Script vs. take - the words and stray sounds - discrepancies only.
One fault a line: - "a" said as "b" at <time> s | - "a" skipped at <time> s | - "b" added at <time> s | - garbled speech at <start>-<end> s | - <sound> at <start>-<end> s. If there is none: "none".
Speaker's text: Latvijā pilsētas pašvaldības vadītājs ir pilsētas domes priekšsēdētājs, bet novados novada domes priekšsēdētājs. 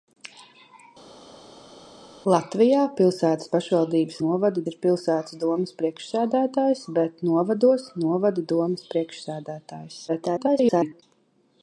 - "vadītājs" said as "novada" at 4.3 s
- garbled speech at 10.1-11.0 s